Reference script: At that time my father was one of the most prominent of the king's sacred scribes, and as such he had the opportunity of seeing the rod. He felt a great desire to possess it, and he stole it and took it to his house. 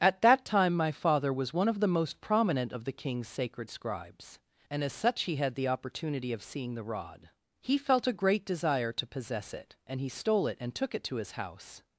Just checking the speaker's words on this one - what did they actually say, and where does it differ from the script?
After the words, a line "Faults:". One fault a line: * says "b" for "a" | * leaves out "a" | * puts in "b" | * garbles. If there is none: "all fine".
At that time my father was one of the most prominent of the king's sacred scribes, and as such he had the opportunity of seeing the rod. He felt a great desire to possess it, and he stole it and took it to his house.
Faults:
all fine